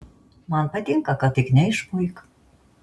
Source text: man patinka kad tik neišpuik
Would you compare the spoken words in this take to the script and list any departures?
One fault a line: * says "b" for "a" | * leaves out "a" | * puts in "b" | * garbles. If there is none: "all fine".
all fine